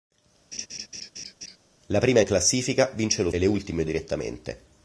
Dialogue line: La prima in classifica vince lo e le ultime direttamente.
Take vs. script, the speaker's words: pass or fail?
pass